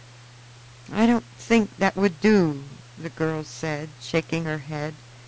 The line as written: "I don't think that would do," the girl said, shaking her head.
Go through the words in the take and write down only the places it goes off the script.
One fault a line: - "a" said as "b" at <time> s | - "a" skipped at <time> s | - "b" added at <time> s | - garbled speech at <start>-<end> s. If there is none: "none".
none